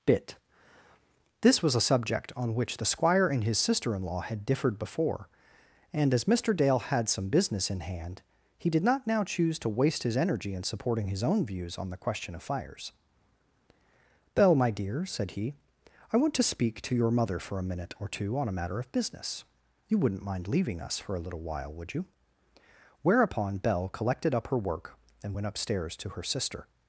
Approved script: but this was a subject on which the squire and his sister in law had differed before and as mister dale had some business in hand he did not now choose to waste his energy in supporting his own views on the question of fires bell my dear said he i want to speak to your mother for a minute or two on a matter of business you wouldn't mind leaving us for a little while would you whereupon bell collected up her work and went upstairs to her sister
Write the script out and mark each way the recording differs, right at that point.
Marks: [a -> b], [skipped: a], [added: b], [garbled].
[but -> bit] this was a subject on which the squire and his sister in law had differed before and as mister dale had some business in hand he did not now choose to waste his energy in supporting his own views on the question of fires bell my dear said he i want to speak to your mother for a minute or two on a matter of business you wouldn't mind leaving us for a little while would you whereupon bell collected up her work and went upstairs to her sister